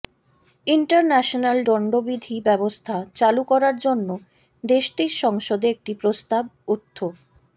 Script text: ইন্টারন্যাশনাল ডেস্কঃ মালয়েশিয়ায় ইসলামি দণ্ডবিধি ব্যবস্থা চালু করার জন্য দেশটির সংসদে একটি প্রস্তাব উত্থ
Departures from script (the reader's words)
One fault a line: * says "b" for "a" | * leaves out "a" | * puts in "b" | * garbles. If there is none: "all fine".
* leaves out "ডেস্কঃ মালয়েশিয়ায় ইসলামি"